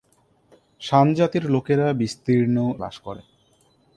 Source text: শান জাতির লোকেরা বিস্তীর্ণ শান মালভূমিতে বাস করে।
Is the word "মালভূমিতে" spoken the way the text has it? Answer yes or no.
no